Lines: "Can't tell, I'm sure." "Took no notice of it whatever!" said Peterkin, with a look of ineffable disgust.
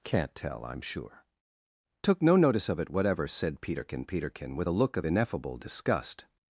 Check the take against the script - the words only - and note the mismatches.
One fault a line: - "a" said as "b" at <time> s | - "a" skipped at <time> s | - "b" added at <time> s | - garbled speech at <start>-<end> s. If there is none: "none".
- "Peterkin" added at 4.0 s